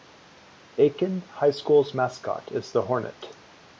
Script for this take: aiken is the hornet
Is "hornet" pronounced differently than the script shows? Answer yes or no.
no